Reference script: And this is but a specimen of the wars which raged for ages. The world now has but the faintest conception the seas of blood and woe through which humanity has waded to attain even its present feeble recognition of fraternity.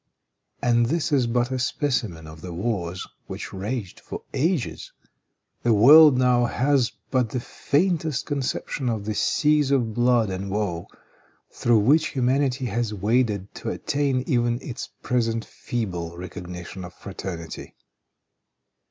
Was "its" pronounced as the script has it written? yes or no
yes